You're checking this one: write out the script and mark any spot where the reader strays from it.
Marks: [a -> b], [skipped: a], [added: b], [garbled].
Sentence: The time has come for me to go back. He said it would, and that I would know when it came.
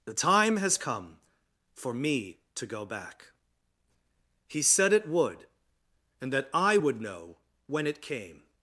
The time has come for me to go back. He said it would, and that I would know when it came.